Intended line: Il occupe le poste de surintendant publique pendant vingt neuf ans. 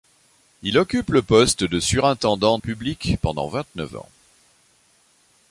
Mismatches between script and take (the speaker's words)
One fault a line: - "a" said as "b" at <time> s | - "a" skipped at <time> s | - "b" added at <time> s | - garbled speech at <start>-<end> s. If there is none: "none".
none